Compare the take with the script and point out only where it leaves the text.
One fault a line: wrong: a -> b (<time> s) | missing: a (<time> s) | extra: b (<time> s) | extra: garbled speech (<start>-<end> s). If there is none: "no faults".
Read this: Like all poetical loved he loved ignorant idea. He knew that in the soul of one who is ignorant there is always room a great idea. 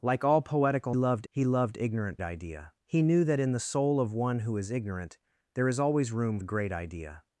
no faults